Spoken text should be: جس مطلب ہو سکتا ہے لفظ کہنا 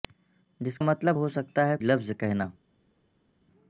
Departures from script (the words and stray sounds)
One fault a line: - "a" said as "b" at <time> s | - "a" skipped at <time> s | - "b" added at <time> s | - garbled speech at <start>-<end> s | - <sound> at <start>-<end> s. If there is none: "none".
none